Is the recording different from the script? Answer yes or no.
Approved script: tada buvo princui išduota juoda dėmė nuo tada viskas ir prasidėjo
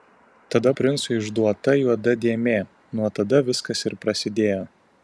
yes